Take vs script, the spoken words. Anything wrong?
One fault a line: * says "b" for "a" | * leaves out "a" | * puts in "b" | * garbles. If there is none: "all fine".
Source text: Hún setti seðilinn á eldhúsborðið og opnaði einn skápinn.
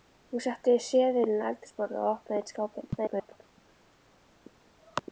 * garbles